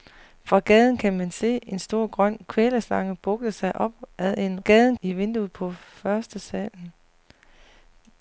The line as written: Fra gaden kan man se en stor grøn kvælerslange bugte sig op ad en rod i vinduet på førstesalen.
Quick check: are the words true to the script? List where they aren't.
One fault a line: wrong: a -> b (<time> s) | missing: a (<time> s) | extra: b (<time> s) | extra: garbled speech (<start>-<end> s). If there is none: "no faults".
wrong: rod -> gaden (4.6 s)